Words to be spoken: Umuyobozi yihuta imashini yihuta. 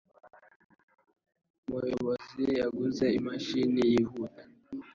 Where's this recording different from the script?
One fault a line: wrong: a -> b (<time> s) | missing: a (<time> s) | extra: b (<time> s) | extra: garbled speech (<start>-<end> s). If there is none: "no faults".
wrong: yihuta -> yaguze (2.6 s)